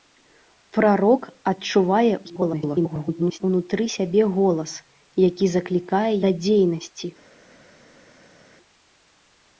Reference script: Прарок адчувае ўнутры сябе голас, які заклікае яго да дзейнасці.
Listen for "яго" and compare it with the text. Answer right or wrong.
wrong